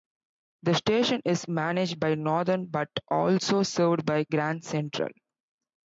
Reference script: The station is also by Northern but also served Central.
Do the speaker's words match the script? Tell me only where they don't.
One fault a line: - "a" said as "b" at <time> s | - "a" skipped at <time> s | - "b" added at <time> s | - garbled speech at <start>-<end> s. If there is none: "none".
- "also" said as "managed" at 1.5 s
- "by Grand" added at 4.0 s